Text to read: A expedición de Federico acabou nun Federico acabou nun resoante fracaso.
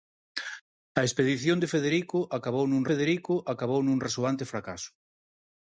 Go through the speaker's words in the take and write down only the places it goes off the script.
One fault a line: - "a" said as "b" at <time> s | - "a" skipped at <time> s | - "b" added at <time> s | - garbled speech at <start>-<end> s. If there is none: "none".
none